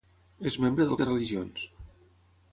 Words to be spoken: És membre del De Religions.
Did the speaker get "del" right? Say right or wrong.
right